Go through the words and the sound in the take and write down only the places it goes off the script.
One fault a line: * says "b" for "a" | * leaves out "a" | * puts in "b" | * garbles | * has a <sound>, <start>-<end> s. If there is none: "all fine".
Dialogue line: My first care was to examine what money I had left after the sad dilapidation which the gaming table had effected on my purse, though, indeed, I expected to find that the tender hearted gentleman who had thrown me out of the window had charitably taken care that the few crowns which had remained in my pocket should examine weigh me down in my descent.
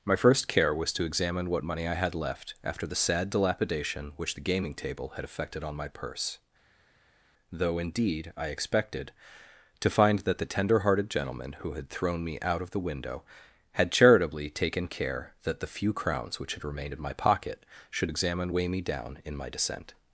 all fine